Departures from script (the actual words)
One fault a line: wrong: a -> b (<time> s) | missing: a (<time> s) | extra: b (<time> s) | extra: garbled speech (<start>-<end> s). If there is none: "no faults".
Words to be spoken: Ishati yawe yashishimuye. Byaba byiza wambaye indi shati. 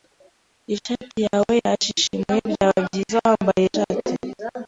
missing: indi (3.7 s)